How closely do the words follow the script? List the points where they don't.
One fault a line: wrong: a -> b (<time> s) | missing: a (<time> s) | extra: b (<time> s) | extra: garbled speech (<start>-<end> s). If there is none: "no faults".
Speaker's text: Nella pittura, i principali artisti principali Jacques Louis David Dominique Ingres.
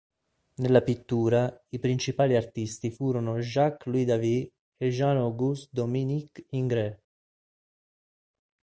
wrong: principali -> furono (2.9 s)
extra: e Jean Auguste (4.8 s)